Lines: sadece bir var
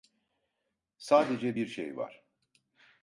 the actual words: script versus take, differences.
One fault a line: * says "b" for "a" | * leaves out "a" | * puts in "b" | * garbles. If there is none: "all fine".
* puts in "şey"